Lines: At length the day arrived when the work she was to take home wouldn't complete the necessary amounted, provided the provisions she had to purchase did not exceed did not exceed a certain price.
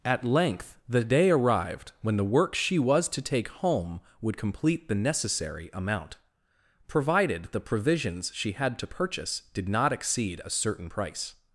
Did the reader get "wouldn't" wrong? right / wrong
wrong